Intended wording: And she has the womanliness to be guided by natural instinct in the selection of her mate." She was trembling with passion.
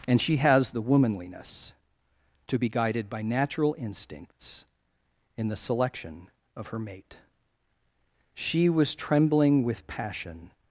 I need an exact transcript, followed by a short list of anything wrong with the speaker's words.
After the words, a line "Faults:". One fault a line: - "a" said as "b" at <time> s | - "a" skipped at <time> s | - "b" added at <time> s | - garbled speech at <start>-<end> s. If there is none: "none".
And she has the womanliness to be guided by natural instincts in the selection of her mate." She was trembling with passion.
Faults:
- "instinct" said as "instincts" at 3.8 s